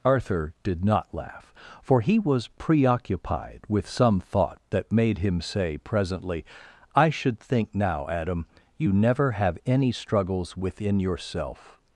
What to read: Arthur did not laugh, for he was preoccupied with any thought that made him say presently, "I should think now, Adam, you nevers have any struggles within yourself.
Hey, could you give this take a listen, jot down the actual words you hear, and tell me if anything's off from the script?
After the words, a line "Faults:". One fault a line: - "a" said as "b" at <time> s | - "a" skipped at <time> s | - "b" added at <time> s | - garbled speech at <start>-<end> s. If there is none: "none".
Arthur did not laugh, for he was preoccupied with some thought that made him say presently, "I should think now, Adam, you never have any struggles within yourself.
Faults:
- "any" said as "some" at 3.9 s
- "nevers" said as "never" at 8.9 s